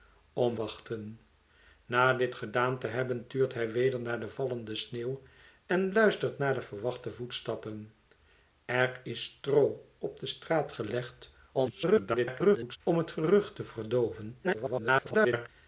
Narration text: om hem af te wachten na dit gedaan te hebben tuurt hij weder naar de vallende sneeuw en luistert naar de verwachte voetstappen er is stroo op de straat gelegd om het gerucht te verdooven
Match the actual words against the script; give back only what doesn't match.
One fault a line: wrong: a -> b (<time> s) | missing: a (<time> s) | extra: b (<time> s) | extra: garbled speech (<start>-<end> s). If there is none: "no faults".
missing: hem af te (0.6 s)
extra: garbled speech (11.5-12.8 s)
extra: garbled speech (14.4-15.5 s)